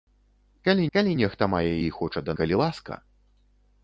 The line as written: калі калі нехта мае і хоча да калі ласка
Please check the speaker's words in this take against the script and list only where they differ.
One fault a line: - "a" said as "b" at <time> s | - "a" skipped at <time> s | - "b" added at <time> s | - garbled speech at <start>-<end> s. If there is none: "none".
none